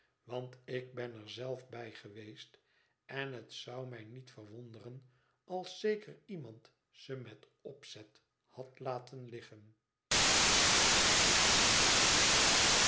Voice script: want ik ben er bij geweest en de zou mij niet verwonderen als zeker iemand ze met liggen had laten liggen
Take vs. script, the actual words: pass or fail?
fail